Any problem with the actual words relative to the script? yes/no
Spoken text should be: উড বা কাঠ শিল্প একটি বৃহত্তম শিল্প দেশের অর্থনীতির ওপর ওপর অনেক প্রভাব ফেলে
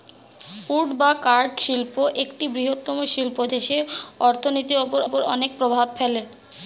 no